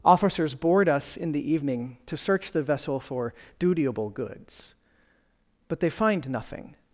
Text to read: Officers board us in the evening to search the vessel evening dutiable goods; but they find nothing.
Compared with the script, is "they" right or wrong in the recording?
right